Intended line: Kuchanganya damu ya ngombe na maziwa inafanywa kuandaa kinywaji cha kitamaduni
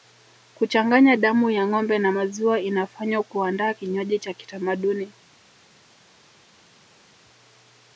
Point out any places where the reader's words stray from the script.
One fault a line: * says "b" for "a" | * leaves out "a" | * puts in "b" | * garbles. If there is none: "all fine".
all fine